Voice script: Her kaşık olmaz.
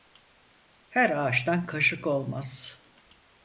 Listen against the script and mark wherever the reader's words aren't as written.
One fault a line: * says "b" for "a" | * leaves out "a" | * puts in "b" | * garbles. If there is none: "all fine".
* puts in "ağaçtan"